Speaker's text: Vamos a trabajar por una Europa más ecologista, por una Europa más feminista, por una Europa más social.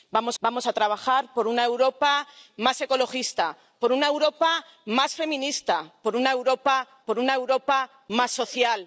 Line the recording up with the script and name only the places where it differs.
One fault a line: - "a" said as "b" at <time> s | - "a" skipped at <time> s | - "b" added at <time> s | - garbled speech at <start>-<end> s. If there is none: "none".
- "vamos" added at 0.4 s
- "por una Europa" added at 7.1 s